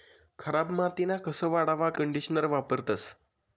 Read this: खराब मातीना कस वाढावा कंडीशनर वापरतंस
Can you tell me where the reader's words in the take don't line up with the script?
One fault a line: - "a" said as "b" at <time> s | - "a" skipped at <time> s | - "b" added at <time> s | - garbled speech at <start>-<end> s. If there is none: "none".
none